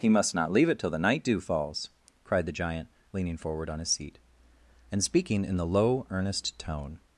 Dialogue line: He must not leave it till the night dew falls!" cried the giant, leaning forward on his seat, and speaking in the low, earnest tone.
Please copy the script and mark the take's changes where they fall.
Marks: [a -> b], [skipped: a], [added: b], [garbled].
He must not leave it till the night dew falls!" cried the giant, leaning forward on his seat, and speaking in the low, earnest tone.